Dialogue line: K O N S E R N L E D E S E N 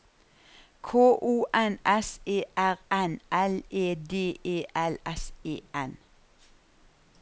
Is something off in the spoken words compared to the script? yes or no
yes